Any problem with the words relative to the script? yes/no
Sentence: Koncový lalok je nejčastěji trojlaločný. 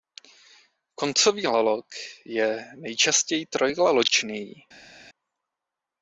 no